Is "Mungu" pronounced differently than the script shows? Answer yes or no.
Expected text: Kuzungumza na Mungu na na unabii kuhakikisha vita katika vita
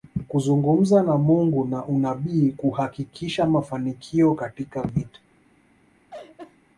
no